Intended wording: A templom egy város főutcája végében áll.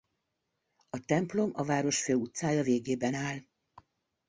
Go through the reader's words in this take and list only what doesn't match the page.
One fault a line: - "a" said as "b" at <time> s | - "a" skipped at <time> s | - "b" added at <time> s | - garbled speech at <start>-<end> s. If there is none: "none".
- "egy" said as "a" at 1.5 s